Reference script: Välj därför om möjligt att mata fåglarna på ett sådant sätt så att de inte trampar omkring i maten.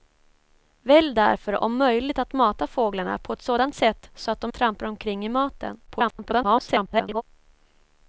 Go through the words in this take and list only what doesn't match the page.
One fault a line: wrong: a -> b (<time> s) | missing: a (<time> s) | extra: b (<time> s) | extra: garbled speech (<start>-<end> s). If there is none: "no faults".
missing: inte (4.5 s)
extra: garbled speech (5.9-7.2 s)